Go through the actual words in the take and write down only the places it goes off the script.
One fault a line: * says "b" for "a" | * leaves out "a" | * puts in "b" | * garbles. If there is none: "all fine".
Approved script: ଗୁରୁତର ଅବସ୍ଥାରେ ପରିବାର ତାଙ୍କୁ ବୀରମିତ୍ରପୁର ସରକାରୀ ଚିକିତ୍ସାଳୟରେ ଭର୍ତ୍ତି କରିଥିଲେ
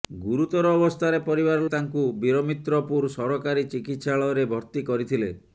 all fine